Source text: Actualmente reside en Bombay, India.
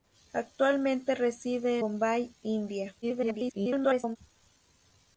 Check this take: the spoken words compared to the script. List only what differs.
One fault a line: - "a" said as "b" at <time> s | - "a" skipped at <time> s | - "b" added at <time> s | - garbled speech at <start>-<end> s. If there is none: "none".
- "en" skipped at 1.8 s
- garbled speech at 3.0-4.2 s